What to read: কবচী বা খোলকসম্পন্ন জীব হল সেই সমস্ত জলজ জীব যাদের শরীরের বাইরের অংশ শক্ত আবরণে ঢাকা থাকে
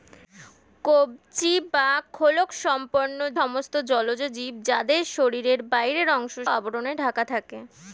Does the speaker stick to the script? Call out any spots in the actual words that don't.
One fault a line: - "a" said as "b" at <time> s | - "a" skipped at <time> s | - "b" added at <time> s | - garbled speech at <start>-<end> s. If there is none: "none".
- "জীব হল সেই" skipped at 3.2 s
- "শক্ত" skipped at 6.4 s